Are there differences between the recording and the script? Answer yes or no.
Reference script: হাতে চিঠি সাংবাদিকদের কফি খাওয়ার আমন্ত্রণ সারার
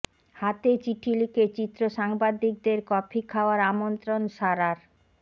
yes